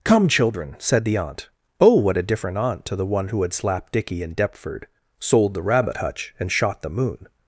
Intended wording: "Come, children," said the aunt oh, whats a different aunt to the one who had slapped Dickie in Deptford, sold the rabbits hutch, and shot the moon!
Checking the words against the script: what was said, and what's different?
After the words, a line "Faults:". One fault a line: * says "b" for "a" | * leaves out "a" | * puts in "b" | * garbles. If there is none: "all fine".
"Come, children," said the aunt oh, what a different aunt to the one who had slapped Dickie in Deptford, sold the rabbit hutch, and shot the moon!
Faults:
* says "what" for "whats"
* says "rabbit" for "rabbits"